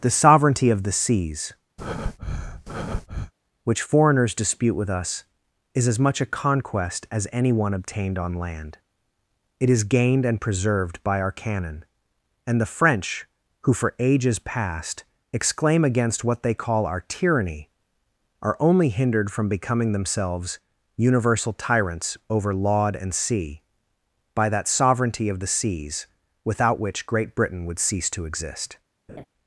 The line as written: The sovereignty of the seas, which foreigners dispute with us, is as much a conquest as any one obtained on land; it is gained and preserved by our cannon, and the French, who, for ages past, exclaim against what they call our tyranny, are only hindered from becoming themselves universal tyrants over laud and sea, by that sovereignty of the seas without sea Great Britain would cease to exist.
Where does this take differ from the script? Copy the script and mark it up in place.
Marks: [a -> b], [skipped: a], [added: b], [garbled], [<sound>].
The sovereignty of the seas, [breath] which foreigners dispute with us, is as much a conquest as any one obtained on land; it is gained and preserved by our cannon, and the French, who, for ages past, exclaim against what they call our tyranny, are only hindered from becoming themselves universal tyrants over laud and sea, by that sovereignty of the seas without [sea -> which] Great Britain would cease to exist. [laugh]